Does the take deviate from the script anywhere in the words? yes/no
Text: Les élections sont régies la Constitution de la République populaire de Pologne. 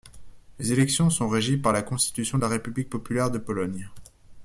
yes